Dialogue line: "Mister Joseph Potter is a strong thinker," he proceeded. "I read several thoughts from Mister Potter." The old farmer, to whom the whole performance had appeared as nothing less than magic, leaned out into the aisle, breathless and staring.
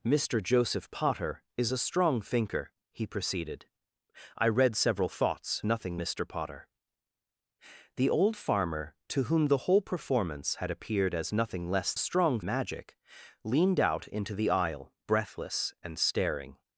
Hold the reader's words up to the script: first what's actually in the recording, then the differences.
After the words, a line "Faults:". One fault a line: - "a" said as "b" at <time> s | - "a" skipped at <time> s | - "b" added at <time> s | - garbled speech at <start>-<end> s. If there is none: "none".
"Mister Joseph Potter is a strong thinker," he proceeded. "I read several thoughts nothing Mister Potter." The old farmer, to whom the whole performance had appeared as nothing less strong magic, leaned out into the aisle, breathless and staring.
Faults:
- "from" said as "nothing" at 5.7 s
- "than" said as "strong" at 12.0 s